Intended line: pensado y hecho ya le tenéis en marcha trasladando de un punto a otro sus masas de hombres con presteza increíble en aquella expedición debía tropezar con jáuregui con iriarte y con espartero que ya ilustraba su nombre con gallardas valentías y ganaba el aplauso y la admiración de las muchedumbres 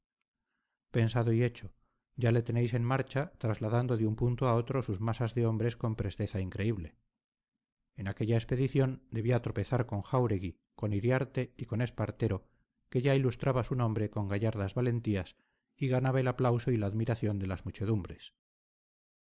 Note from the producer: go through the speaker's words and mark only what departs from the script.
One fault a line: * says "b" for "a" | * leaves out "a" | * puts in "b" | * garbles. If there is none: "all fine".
all fine